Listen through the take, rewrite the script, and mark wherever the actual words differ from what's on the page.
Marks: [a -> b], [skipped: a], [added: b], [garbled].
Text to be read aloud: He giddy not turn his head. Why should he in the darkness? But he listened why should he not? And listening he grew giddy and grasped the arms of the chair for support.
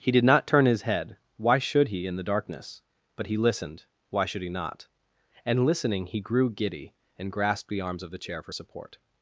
He [giddy -> did] not turn his head. Why should he in the darkness? But he listened why should he not? And listening he grew giddy and grasped the arms of the chair for support.